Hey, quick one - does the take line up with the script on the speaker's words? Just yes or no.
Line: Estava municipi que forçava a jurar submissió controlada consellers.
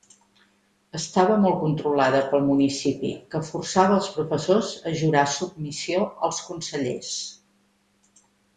no